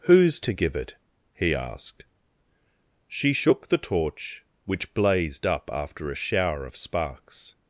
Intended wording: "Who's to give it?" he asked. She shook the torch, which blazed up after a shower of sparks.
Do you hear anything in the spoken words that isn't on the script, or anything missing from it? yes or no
no